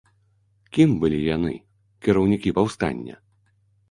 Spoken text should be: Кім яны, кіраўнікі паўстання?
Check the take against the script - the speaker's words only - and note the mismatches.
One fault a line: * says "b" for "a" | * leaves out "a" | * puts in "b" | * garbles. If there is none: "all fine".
* puts in "былі"